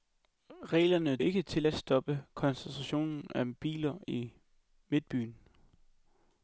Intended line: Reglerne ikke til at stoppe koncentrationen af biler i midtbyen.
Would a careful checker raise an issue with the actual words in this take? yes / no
no